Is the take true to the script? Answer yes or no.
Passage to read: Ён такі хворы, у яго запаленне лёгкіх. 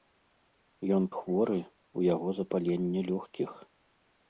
no